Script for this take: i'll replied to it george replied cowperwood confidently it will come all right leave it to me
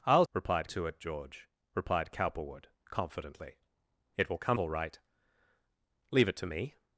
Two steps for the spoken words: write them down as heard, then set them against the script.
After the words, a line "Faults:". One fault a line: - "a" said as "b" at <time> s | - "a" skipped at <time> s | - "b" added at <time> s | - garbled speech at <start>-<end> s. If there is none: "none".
i'll replied to it george replied cowperwood confidently it will come all right leave it to me
Faults:
none